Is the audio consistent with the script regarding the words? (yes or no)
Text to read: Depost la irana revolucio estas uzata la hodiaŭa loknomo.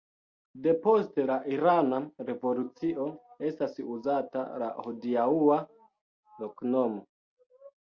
yes